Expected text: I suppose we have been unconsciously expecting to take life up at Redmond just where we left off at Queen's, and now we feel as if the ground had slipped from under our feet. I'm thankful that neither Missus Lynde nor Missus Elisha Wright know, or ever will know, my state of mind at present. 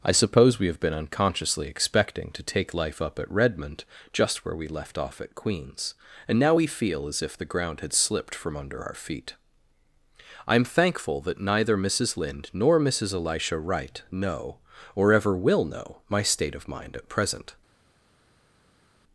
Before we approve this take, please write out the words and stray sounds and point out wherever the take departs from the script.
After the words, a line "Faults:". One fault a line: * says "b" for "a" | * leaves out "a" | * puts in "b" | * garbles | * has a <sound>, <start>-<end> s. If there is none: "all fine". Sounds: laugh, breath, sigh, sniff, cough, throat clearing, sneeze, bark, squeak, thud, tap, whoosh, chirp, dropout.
I suppose we have been unconsciously expecting to take life up at Redmond just where we left off at Queen's, and now we feel as if the ground had slipped from under our feet. I'm thankful that neither Missus Lynde nor Missus Elisha Wright know, or ever will know, my state of mind at present.
Faults:
all fine